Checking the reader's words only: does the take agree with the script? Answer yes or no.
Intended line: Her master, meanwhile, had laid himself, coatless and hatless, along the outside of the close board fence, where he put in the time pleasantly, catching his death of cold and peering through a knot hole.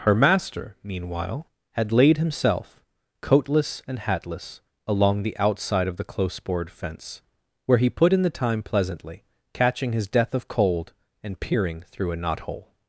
yes